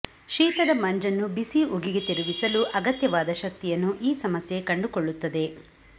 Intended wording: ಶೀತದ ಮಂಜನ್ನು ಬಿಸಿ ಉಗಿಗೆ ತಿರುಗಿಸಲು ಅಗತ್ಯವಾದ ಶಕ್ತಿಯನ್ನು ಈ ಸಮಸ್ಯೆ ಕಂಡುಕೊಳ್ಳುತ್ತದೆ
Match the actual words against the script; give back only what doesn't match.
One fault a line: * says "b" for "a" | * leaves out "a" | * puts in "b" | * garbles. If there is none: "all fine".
all fine